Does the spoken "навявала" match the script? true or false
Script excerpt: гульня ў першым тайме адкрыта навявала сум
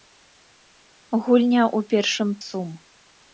false